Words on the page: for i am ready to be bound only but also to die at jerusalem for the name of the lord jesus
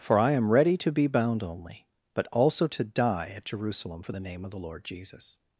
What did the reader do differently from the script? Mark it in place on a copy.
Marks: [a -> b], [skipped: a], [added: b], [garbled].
for i am ready to be bound only but also to die at jerusalem for the name of the lord jesus